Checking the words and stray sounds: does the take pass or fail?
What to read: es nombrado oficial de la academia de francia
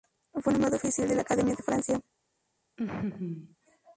fail